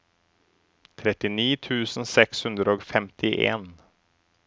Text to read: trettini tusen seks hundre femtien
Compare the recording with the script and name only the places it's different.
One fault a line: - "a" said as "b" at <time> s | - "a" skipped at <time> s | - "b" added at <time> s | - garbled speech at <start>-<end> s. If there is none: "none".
- "og" added at 2.7 s